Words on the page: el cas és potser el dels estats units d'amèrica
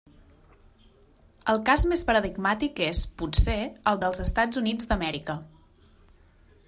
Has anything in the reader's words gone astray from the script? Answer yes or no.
yes